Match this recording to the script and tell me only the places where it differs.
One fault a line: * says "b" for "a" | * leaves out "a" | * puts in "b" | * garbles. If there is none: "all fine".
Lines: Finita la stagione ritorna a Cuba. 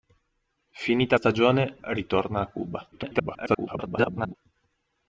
* leaves out "la"
* garbles